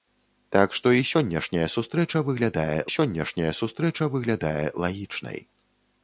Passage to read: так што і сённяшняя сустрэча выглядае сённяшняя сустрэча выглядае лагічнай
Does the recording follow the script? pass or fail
pass